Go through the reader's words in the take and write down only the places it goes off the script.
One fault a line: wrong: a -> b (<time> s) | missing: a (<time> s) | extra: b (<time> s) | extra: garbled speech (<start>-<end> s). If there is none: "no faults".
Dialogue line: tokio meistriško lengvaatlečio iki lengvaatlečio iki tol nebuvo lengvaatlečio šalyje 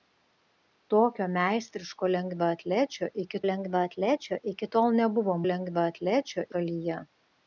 no faults